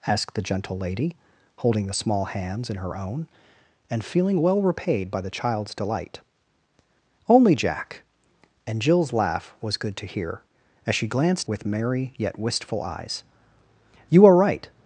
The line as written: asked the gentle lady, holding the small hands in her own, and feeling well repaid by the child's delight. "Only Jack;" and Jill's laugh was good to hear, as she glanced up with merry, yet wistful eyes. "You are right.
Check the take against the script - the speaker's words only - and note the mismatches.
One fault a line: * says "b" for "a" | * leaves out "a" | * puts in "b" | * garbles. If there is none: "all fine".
* leaves out "up"